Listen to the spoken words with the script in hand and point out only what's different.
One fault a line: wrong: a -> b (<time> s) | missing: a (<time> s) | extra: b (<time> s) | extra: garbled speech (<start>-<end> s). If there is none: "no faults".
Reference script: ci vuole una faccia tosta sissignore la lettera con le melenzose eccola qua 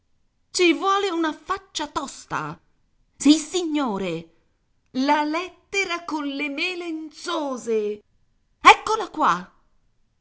no faults